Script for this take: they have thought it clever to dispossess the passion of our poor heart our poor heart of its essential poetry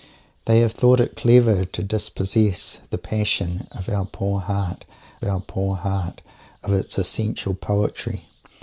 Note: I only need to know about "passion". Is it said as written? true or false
true